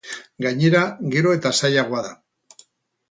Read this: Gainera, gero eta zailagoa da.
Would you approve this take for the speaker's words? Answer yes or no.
yes